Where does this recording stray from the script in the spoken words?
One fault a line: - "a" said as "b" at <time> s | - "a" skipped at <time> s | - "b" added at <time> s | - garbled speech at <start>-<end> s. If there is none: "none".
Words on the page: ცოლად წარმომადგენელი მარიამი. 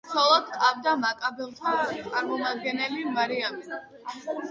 - "ჰყავდა მაკაბელთა" added at 0.5 s